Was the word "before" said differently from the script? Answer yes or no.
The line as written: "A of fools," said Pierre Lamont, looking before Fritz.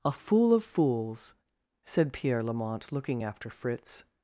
yes